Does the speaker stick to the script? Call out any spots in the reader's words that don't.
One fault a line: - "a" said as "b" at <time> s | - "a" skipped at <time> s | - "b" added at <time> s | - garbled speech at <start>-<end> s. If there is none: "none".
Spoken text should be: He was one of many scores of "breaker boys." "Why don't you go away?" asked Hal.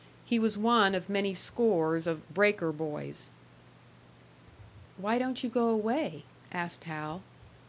none